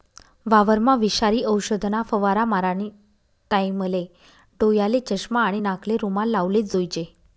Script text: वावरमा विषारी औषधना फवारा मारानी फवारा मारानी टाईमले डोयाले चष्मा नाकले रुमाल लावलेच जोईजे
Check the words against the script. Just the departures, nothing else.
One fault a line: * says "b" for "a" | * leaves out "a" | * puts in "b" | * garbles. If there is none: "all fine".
* leaves out "फवारा मारानी"
* puts in "आणि"